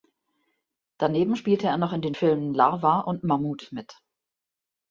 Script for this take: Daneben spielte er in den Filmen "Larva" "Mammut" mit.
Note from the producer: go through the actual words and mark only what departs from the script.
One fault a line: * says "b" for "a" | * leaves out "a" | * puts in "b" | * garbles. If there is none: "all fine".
* puts in "noch"
* puts in "und"